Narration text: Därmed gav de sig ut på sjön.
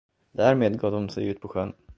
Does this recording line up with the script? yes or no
yes